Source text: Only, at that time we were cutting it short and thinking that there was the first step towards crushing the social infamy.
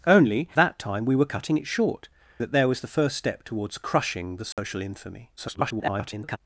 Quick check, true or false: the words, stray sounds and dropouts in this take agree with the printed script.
false